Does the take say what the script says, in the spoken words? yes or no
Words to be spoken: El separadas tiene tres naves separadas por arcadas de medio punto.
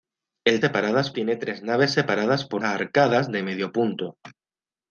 yes